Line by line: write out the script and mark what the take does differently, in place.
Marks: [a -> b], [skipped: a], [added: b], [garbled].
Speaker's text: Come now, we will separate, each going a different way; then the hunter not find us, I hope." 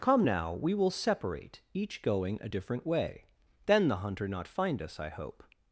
Come now, we will separate, each going a different way; then the hunter not find us, I hope."